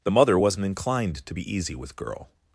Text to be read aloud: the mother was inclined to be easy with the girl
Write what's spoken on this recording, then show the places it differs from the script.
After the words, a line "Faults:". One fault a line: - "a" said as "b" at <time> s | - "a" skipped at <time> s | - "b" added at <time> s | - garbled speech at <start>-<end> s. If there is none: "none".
the mother wasn't inclined to be easy with girl
Faults:
- "was" said as "wasn't" at 0.4 s
- "the" skipped at 2.0 s